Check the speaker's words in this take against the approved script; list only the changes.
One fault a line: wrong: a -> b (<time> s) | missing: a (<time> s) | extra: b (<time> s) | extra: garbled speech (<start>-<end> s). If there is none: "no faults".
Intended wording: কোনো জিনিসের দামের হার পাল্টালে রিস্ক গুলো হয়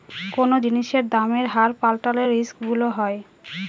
no faults